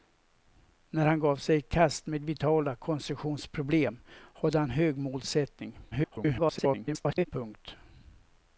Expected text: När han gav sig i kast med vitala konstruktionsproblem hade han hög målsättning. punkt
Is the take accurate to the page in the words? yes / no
no